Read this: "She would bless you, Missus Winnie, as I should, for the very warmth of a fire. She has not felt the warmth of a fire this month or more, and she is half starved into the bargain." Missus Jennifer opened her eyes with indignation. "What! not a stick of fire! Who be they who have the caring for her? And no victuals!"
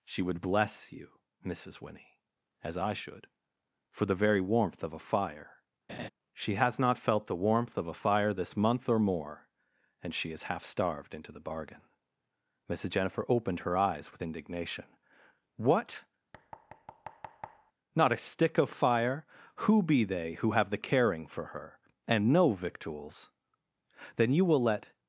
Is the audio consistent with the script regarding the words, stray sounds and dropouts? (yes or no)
no